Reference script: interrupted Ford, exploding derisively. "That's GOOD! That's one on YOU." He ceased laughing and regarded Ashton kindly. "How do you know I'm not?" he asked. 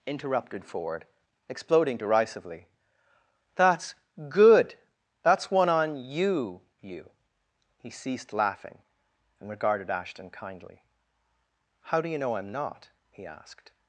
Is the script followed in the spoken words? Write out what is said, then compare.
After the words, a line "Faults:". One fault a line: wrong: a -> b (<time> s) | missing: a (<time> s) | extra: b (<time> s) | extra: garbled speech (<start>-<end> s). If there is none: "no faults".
interrupted Ford, exploding derisively. "That's GOOD! That's one on YOU." you He ceased laughing and regarded Ashton kindly. "How do you know I'm not?" he asked.
Faults:
extra: you (6.8 s)